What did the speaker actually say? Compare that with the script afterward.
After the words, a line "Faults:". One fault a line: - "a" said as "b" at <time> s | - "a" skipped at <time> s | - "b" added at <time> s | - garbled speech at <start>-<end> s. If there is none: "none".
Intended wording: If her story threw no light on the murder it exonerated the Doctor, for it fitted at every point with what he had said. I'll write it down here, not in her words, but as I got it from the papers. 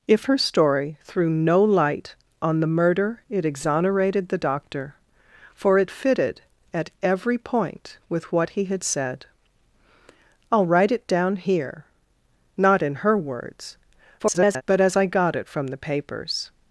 If her story threw no light on the murder it exonerated the Doctor, for it fitted at every point with what he had said. I'll write it down here, not in her words, [garbled] but as I got it from the papers.
Faults:
- garbled speech at 14.2-14.6 s